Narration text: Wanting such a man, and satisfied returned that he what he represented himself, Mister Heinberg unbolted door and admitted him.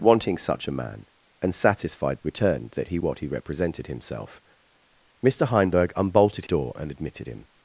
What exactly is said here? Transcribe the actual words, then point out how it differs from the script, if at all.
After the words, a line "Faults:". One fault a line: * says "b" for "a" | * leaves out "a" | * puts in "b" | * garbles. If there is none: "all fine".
Wanting such a man, and satisfied returned that he what he represented himself, Mister Heinberg unbolted door and admitted him.
Faults:
all fine